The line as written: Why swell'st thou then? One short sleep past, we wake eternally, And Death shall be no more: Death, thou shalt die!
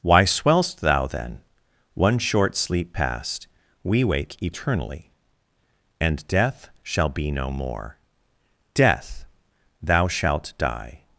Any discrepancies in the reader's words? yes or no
no